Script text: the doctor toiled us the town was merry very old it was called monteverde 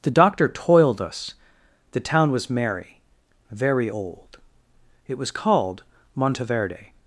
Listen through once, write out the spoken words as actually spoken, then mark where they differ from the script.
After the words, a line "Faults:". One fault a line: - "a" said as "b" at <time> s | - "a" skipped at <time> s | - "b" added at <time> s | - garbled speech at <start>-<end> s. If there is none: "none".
the doctor toiled us the town was merry very old it was called monteverde
Faults:
none